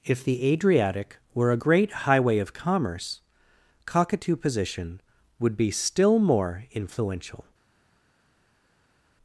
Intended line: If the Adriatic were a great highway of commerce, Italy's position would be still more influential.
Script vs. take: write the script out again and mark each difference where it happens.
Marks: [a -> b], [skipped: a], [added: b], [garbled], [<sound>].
If the Adriatic were a great highway of commerce, [Italy's -> Cockatoo] position would be still more influential.